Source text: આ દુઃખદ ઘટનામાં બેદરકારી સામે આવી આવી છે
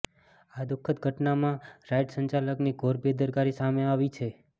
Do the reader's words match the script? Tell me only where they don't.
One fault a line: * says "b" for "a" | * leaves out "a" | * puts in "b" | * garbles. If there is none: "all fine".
* puts in "રાઈડ સંચાલકની ઘોર"
* leaves out "આવી"